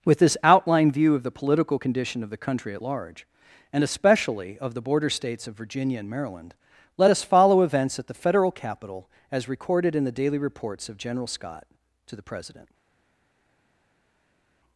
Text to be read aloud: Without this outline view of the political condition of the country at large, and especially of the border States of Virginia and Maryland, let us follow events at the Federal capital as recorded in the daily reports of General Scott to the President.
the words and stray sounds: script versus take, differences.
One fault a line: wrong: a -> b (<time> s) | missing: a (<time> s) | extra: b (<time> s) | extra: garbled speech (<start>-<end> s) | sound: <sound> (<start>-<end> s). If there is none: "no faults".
wrong: Without -> With (0.0 s)